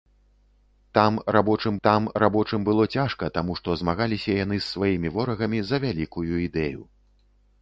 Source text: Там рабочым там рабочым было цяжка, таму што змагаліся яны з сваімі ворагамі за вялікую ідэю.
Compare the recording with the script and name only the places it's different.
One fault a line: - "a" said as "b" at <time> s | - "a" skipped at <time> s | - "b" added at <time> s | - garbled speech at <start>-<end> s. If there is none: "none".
none